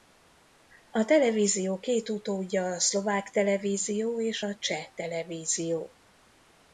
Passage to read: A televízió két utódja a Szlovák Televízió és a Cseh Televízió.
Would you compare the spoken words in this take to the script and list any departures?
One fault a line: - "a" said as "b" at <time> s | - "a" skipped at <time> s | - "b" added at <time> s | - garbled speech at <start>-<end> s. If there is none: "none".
none